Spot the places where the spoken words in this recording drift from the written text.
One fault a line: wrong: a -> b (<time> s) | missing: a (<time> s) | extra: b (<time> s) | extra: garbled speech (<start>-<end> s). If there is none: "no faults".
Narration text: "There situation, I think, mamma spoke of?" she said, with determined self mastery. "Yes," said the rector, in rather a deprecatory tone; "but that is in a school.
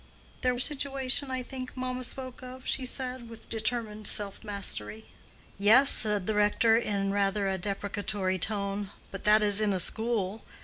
no faults